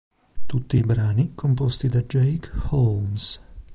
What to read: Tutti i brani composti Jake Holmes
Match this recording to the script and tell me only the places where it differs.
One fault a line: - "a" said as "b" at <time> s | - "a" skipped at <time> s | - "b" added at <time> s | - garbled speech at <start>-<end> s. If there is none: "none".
- "da" added at 1.9 s